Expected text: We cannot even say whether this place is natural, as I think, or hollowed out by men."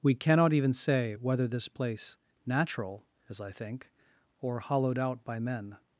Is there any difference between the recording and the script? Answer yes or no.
yes